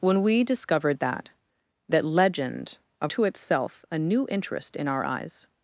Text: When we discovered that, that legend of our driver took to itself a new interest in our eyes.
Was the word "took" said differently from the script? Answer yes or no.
yes